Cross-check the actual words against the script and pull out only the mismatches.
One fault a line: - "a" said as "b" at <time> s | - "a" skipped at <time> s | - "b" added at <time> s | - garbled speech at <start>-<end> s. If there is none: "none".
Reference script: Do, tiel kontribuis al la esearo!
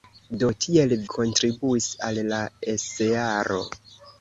none